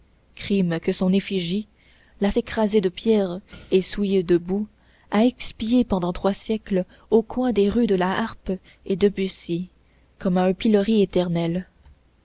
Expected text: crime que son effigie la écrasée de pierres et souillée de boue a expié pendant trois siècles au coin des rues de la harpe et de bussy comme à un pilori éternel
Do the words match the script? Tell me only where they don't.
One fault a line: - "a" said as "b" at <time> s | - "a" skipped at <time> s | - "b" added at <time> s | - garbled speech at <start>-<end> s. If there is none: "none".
none